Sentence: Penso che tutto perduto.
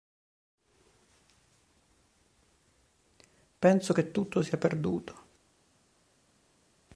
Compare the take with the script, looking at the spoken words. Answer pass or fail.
fail